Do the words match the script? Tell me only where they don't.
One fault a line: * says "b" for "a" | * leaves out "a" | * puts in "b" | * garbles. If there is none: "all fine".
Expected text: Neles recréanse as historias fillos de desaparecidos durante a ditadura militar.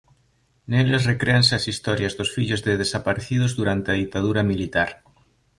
* puts in "dos"